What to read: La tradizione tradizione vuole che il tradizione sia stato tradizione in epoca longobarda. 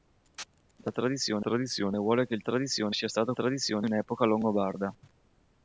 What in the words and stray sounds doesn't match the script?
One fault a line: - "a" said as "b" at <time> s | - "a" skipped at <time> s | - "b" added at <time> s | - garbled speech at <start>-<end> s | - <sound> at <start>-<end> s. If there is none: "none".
none